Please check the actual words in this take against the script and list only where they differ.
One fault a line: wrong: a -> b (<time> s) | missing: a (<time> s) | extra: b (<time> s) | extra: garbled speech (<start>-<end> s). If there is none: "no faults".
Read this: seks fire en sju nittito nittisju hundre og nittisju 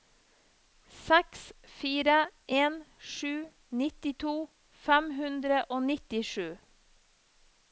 wrong: nittisju -> fem (4.9 s)